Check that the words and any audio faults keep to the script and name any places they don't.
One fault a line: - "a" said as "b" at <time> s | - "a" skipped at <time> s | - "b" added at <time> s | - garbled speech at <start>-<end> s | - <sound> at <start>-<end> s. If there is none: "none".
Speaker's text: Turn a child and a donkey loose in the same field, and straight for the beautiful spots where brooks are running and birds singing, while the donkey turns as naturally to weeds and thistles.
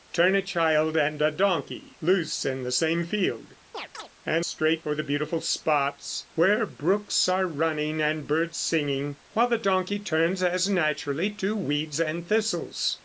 - chirp at 3.7-4.1 s